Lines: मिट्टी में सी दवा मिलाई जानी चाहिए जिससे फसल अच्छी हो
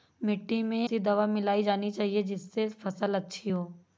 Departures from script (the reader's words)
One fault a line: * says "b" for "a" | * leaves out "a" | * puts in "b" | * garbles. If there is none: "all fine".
all fine